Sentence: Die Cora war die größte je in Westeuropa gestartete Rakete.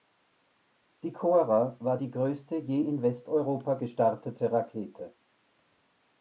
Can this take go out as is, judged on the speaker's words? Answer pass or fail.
pass